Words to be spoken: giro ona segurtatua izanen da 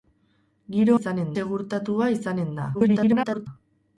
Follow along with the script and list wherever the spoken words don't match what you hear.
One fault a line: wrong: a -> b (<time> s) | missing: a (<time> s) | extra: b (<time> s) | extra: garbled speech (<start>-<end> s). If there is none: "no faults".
wrong: ona -> izanen (1.0 s)
extra: garbled speech (2.7-3.5 s)